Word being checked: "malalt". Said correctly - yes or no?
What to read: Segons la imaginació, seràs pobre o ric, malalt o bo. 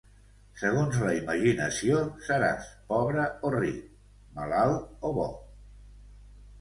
yes